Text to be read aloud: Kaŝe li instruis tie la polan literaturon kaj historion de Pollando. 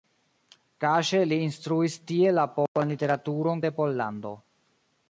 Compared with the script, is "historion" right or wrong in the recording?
wrong